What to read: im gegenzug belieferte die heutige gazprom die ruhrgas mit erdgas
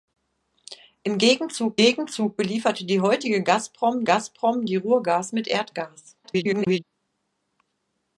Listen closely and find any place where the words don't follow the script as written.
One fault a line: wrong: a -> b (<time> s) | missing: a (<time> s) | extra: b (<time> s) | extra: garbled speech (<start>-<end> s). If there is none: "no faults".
extra: gegenzug (1.8 s)
extra: gazprom (4.0 s)
extra: garbled speech (6.2-6.8 s)